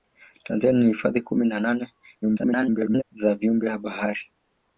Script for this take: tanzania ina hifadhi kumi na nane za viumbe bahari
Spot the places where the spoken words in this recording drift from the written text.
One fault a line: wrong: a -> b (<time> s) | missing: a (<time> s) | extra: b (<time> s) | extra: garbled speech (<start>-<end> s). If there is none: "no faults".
extra: garbled speech (2.2-3.0 s)